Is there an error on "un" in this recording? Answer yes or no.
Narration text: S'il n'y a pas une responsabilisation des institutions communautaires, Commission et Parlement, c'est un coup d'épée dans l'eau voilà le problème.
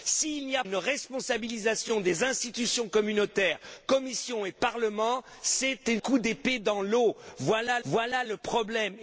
yes